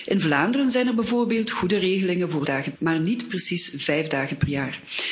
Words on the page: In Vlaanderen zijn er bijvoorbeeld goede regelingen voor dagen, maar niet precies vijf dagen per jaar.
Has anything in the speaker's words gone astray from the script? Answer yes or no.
no